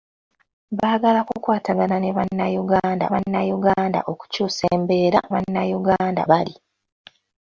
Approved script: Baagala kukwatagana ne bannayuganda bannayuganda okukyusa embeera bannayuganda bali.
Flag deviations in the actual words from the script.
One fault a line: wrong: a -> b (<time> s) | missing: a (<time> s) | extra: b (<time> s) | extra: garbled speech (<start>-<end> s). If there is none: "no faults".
no faults